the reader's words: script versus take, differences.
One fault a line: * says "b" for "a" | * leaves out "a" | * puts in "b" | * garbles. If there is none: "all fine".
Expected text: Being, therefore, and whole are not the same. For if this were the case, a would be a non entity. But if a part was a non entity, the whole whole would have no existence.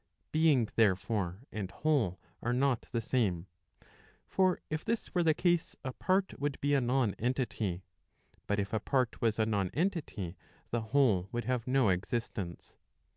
* puts in "part"
* leaves out "whole"